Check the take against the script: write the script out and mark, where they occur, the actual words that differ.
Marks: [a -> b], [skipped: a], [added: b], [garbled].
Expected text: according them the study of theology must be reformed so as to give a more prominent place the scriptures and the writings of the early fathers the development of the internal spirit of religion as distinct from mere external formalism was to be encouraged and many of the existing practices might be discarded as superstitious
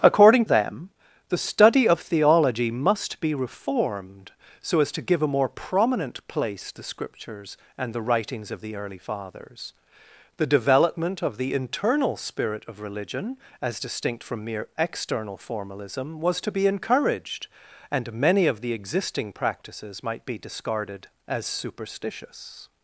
according them the study of theology must be reformed so as to give a more prominent place the scriptures and the writings of the early fathers the development of the internal spirit of religion as distinct from mere external formalism was to be encouraged and many of the existing practices might be discarded as superstitious